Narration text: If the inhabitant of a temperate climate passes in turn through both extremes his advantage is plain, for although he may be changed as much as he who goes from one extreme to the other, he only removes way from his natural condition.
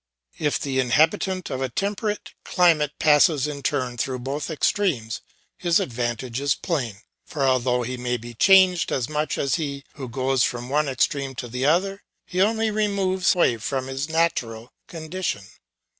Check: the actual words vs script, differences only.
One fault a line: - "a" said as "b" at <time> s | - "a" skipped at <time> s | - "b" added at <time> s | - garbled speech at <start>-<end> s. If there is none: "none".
none